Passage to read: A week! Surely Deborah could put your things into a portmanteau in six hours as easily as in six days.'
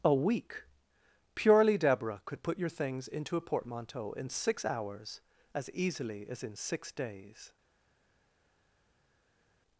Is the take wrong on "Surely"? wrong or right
wrong